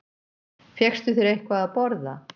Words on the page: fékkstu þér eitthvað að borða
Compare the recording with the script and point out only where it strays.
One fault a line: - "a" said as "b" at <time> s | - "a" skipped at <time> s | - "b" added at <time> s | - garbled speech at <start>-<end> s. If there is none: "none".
none